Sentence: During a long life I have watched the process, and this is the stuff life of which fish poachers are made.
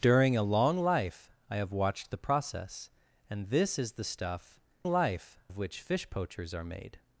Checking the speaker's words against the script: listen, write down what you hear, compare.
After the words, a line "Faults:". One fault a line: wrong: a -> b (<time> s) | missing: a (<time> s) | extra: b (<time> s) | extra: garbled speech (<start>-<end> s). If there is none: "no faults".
During a long life I have watched the process, and this is the stuff life of which fish poachers are made.
Faults:
no faults